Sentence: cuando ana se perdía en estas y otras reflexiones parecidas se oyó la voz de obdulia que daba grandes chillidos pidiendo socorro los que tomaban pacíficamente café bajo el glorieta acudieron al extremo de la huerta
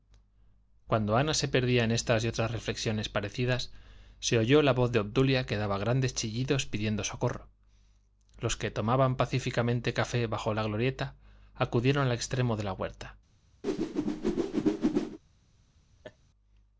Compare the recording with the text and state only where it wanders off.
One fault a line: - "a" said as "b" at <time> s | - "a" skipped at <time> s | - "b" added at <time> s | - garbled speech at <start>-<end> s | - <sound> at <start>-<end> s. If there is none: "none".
- "el" said as "la" at 10.5 s
- whoosh at 13.6-15.2 s
- laugh at 16.0-16.2 s